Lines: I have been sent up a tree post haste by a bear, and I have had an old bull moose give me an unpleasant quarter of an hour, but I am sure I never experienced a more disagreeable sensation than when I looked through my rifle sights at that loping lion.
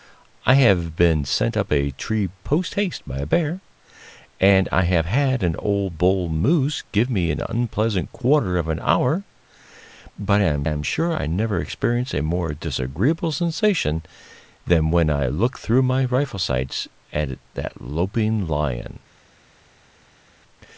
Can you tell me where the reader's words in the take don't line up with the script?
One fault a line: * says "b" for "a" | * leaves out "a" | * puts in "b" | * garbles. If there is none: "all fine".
* puts in "am"